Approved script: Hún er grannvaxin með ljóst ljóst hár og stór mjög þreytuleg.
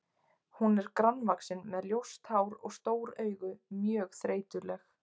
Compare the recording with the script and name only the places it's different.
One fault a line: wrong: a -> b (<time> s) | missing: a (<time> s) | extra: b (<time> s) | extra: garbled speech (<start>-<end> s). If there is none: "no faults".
missing: ljóst (2.3 s)
extra: augu (3.2 s)